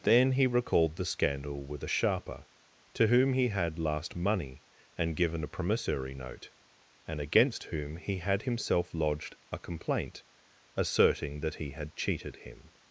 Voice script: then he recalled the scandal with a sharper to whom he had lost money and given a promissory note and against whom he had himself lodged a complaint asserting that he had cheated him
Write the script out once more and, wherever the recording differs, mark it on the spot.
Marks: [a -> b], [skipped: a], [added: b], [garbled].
then he recalled the scandal with a sharper to whom he had [lost -> last] money and given a promissory note and against whom he had himself lodged a complaint asserting that he had cheated him